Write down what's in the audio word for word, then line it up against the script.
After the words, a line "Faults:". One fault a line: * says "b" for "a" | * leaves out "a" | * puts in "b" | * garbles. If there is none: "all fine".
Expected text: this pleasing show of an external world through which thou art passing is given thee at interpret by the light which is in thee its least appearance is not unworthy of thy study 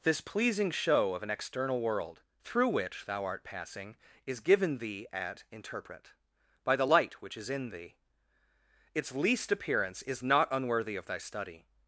this pleasing show of an external world through which thou art passing is given thee at interpret by the light which is in thee its least appearance is not unworthy of thy study
Faults:
all fine